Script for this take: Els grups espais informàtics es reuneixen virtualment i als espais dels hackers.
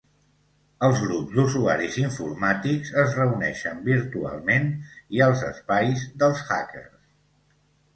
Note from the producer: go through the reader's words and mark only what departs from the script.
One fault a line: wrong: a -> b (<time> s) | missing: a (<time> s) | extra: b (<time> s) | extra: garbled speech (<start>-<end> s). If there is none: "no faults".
wrong: espais -> d"usuaris (1.4 s)